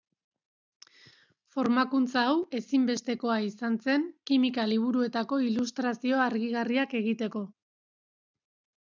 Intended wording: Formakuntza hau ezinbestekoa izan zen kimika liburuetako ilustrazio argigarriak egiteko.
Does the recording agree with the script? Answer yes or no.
yes